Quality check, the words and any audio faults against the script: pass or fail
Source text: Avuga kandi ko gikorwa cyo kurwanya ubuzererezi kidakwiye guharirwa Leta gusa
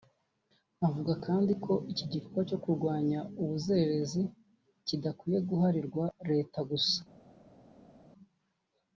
fail